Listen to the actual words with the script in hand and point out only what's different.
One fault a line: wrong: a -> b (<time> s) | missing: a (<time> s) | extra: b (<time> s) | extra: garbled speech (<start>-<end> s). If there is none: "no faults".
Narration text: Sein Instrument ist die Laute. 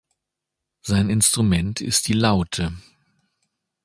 no faults